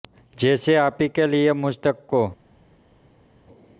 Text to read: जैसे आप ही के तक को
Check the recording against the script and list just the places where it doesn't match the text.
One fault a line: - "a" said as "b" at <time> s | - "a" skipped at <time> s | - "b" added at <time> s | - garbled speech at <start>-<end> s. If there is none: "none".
- "लिए मुझ" added at 1.2 s